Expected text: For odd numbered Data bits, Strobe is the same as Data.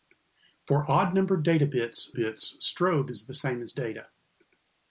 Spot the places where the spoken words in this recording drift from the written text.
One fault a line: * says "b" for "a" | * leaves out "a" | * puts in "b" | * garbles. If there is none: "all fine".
* puts in "bits"